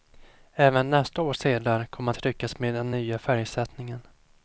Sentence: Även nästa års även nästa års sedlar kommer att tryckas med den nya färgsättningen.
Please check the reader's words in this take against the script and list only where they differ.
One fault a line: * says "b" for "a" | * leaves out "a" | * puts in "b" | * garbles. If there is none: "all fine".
* leaves out "även nästa års"